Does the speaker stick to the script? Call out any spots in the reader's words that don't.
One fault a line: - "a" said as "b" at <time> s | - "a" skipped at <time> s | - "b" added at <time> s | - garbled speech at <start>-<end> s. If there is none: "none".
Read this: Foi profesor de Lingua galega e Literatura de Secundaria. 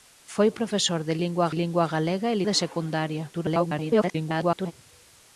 - "Lingua" added at 1.6 s
- "Literatura" skipped at 2.4 s
- garbled speech at 3.3-4.7 s